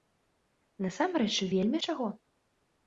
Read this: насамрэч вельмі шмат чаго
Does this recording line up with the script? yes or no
no